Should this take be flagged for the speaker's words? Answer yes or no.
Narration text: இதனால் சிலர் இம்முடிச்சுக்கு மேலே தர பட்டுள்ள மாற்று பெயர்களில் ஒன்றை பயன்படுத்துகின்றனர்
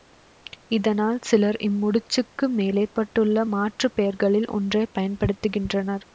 yes